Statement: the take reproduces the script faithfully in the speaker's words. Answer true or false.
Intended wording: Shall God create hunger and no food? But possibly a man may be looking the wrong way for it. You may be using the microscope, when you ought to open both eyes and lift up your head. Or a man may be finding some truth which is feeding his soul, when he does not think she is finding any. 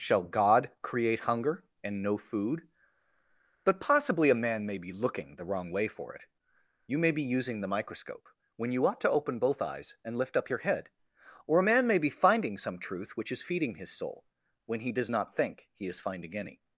false